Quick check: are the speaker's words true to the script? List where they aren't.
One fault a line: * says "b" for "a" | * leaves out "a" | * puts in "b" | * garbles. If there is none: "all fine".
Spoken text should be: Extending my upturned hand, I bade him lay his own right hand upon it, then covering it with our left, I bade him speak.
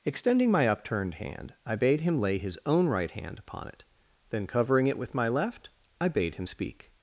* says "my" for "our"